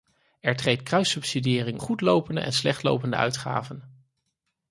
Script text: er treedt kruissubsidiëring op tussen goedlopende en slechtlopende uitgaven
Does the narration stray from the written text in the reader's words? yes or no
yes